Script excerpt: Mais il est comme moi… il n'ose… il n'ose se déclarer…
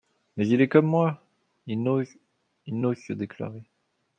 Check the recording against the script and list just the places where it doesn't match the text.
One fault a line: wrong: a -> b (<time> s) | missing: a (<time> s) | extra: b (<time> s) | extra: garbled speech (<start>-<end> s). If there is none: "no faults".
no faults